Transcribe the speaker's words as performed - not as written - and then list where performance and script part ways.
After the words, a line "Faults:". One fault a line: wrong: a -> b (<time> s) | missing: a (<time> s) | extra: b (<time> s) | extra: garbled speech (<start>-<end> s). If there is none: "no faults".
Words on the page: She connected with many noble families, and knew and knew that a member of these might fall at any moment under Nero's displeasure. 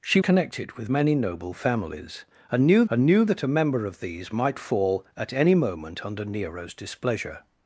She connected with many noble families, and knew and knew that a member of these might fall at any moment under Nero's displeasure.
Faults:
no faults